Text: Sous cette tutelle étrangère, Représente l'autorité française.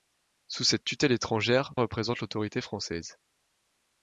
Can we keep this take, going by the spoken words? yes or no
yes